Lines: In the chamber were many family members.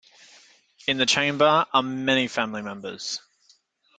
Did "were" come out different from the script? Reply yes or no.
yes